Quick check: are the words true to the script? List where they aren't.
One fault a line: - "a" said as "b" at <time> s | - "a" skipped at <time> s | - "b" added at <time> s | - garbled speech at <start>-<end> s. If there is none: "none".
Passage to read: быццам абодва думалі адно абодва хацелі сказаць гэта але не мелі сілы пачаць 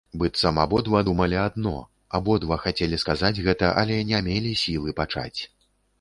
none